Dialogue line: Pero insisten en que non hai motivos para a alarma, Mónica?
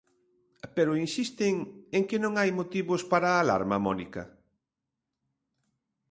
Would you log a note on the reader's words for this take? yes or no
no